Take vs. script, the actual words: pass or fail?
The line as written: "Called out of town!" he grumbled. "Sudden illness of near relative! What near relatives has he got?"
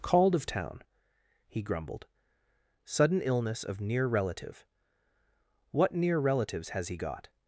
fail